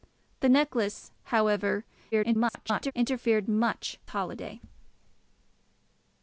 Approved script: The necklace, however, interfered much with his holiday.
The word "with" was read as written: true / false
false